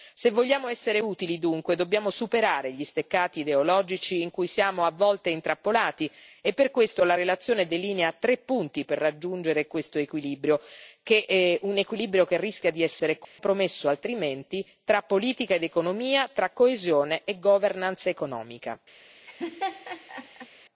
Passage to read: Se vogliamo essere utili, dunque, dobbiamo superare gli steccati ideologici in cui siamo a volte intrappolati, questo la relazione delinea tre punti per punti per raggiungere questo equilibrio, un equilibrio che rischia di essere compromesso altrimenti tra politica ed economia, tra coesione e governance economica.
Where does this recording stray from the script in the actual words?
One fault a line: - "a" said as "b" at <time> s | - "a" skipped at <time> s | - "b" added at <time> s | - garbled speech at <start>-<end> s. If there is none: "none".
- "e per" added at 6.4 s
- "punti per" skipped at 9.0 s